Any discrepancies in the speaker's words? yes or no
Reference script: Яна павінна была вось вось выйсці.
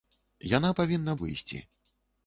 yes